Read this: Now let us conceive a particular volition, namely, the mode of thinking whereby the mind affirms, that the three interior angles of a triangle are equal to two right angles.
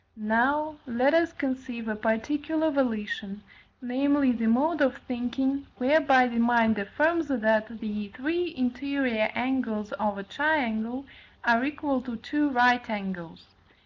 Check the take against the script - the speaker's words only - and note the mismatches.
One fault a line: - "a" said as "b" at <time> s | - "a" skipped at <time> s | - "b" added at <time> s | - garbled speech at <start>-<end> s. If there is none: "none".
none